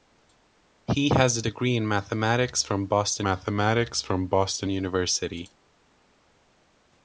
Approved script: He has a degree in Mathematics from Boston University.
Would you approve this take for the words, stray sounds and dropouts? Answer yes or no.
no